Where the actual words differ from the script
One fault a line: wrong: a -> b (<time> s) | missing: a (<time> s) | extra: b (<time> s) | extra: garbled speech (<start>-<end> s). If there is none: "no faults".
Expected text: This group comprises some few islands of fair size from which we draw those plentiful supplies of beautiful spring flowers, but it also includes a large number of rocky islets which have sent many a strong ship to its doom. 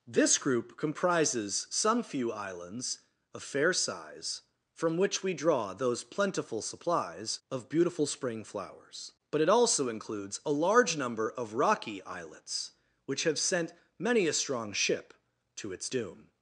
no faults